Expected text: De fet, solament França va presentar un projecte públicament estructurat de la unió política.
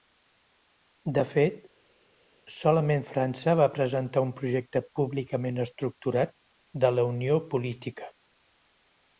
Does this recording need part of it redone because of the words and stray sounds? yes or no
no